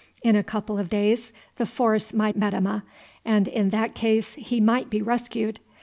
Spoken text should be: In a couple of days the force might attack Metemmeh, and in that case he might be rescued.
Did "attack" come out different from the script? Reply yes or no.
yes